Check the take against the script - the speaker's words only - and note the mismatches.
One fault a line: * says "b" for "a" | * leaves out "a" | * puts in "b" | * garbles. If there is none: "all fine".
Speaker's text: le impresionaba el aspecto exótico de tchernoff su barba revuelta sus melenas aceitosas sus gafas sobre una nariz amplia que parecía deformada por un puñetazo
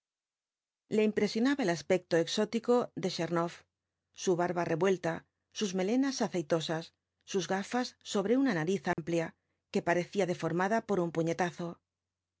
all fine